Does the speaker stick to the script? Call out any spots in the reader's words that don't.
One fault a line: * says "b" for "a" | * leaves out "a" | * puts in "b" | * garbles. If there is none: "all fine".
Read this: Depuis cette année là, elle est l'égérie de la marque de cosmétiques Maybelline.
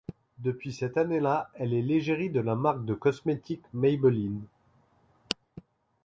all fine